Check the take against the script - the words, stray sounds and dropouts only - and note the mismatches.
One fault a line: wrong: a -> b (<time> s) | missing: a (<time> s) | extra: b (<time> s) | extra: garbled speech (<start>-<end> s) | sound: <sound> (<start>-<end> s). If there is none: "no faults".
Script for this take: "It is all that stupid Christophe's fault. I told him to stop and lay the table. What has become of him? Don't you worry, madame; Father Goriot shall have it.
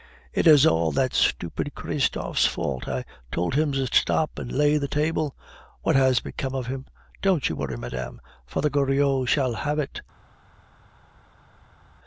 no faults